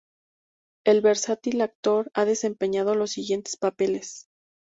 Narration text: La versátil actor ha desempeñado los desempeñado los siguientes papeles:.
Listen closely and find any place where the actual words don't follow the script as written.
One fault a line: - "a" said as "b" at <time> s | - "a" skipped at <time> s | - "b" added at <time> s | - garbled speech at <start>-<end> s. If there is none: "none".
- "La" said as "El" at 0.8 s
- "desempeñado los" skipped at 3.1 s